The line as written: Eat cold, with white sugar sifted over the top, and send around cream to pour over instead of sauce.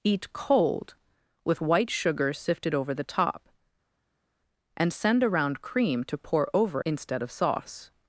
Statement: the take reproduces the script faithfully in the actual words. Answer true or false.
true